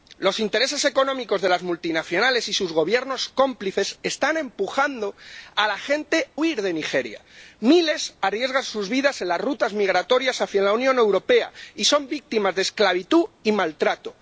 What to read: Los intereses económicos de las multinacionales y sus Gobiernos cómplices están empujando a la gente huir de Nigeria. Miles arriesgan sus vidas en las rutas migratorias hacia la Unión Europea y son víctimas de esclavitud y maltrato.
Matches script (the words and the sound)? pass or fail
pass